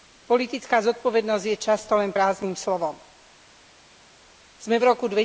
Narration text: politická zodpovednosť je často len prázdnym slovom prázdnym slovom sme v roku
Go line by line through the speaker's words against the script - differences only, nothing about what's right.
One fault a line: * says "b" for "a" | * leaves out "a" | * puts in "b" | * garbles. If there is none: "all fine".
* leaves out "prázdnym slovom"